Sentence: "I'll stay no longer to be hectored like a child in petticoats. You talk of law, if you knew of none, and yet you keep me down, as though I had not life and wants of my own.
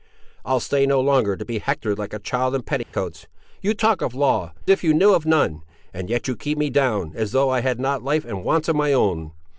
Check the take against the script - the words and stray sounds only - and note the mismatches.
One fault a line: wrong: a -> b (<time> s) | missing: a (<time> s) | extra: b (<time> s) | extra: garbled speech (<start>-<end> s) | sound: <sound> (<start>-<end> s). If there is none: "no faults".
sound: dropout (2.8-2.9 s)